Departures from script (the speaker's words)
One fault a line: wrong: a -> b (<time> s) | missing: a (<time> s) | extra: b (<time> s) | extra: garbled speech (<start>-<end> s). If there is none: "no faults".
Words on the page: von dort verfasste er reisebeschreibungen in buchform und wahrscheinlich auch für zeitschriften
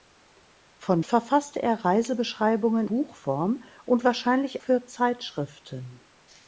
missing: dort (1.0 s)
missing: in (2.9 s)
missing: auch (4.6 s)